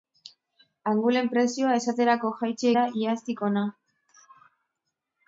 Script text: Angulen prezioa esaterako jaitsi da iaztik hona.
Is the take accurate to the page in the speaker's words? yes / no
yes